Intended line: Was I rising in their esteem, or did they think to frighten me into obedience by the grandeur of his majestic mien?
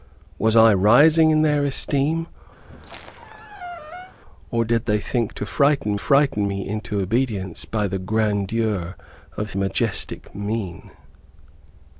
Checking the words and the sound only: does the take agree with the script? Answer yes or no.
no